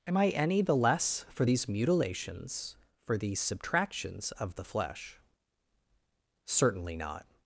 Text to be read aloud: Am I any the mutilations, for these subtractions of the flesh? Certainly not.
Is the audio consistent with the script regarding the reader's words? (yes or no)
no